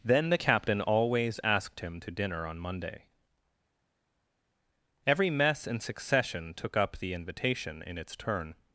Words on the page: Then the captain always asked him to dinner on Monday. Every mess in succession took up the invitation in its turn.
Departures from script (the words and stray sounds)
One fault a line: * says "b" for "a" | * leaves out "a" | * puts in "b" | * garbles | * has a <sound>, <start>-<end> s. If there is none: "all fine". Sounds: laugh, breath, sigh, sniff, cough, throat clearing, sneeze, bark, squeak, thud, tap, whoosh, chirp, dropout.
all fine